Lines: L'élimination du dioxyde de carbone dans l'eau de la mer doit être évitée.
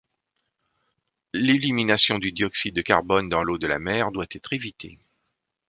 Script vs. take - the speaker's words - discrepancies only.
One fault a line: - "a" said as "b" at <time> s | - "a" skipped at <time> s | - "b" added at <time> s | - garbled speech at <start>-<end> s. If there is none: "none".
none